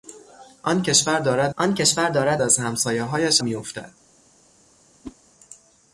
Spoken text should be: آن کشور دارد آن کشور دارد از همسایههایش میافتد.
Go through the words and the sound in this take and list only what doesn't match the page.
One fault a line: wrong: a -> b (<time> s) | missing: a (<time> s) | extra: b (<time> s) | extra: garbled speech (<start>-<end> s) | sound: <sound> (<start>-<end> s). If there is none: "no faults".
sound: whoosh (5.0-5.2 s)